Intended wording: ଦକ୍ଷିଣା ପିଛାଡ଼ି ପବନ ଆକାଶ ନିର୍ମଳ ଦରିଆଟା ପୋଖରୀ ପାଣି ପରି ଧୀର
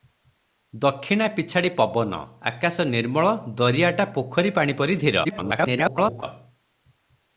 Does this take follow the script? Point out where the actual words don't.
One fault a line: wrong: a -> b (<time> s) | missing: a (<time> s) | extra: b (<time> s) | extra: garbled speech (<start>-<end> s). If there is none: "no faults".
extra: garbled speech (5.2-6.2 s)